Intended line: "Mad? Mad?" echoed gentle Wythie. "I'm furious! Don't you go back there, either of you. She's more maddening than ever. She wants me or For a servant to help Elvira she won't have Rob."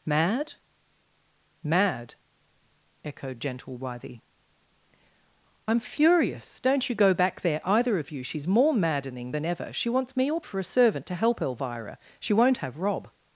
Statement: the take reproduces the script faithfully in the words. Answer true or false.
true